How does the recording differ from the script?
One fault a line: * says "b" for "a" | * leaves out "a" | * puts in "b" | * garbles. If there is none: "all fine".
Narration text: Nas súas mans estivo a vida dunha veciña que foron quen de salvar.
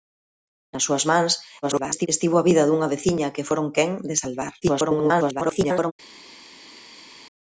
* garbles
* garbles